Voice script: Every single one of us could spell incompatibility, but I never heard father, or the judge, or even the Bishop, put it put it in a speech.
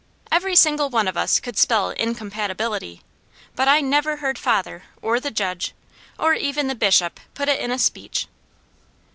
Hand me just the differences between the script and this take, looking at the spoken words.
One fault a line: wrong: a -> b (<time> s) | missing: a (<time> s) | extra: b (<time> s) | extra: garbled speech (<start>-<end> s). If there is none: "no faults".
missing: put it (7.6 s)